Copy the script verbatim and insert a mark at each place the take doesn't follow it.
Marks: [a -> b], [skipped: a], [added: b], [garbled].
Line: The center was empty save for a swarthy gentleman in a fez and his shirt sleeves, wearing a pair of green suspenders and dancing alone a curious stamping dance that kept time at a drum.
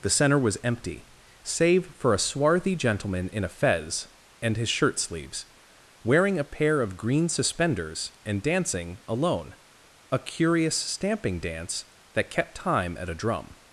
The center was empty save for a swarthy gentleman in a fez and his shirt sleeves, wearing a pair of green suspenders and dancing alone a curious stamping dance that kept time at a drum.